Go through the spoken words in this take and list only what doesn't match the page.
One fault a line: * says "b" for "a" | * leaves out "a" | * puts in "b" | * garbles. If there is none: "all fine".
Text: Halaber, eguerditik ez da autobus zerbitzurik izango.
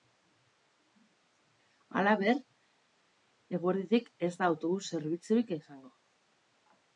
all fine